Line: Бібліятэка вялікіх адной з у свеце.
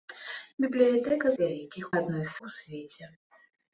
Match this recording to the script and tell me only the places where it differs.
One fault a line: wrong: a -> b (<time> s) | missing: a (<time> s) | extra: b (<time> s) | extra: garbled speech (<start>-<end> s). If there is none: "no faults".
no faults